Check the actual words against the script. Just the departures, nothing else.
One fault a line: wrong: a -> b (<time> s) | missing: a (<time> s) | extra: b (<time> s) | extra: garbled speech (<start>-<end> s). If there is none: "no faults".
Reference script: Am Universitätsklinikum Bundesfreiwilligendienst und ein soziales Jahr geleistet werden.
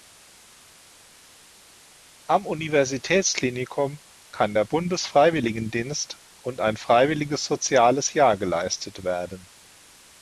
extra: kann der (4.3 s)
extra: freiwilliges (6.7 s)